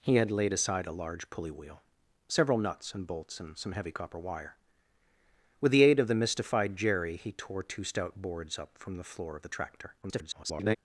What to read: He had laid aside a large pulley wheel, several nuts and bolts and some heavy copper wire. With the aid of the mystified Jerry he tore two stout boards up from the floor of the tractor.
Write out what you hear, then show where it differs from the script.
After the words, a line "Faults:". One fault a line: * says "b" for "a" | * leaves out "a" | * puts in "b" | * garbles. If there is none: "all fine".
He had laid aside a large pulley wheel, several nuts and bolts and some heavy copper wire. With the aid of the mystified Jerry he tore two stout boards up from the floor of the tractor. [garbled]
Faults:
* garbles